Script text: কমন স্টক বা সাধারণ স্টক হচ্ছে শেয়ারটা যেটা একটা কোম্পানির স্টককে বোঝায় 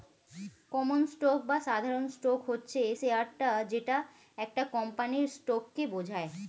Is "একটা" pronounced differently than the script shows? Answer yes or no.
no